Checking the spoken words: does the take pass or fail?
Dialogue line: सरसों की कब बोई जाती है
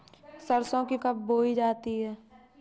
pass